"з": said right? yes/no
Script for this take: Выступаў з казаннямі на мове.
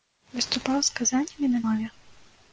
yes